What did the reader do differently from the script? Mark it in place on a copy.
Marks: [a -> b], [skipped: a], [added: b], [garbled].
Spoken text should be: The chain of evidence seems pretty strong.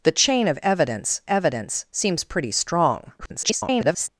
The chain of evidence [added: evidence] seems pretty strong. [garbled]